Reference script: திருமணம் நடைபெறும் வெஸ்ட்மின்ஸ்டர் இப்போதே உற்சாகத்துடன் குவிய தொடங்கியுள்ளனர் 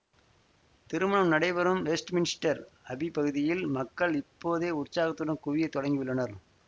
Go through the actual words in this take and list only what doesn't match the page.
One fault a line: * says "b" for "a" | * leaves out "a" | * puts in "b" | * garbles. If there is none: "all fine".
* puts in "அபி பகுதியில் மக்கள்"